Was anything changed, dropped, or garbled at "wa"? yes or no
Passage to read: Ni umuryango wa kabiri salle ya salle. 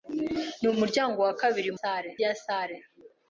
no